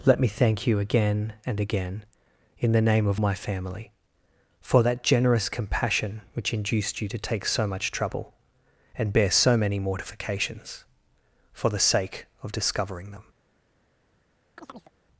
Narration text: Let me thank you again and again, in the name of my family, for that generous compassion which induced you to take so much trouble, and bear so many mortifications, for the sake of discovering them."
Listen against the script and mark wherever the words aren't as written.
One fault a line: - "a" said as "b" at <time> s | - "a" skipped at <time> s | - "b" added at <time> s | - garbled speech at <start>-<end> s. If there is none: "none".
none